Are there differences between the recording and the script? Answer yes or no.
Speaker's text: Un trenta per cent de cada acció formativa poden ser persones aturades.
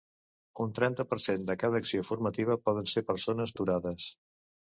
no